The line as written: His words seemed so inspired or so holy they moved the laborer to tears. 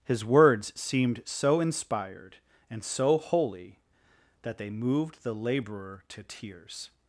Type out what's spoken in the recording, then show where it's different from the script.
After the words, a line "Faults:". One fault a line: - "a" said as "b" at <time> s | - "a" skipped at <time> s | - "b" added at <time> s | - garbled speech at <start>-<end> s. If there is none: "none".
His words seemed so inspired and so holy that they moved the laborer to tears.
Faults:
- "or" said as "and" at 2.7 s
- "that" added at 4.4 s